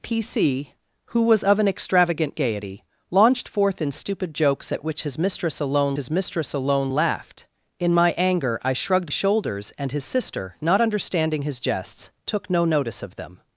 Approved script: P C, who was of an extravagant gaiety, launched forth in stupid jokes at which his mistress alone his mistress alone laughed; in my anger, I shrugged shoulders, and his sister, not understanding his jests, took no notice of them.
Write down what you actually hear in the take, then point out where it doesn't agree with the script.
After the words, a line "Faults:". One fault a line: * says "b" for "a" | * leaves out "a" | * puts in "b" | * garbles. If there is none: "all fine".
P C, who was of an extravagant gaiety, launched forth in stupid jokes at which his mistress alone his mistress alone laughed; in my anger, I shrugged shoulders, and his sister, not understanding his jests, took no notice of them.
Faults:
all fine